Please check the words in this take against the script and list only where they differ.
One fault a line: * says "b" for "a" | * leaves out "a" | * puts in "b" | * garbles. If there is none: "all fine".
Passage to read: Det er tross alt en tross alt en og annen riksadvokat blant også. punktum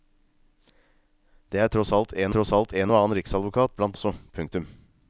all fine